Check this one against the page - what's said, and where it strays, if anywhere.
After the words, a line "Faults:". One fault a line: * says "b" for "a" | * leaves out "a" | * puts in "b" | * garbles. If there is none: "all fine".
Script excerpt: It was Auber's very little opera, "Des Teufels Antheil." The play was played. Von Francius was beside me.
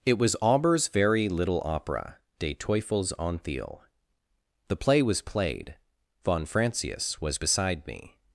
It was Auber's very little opera, "Des Teufels Antheil." The play was played. Von Francius was beside me.
Faults:
all fine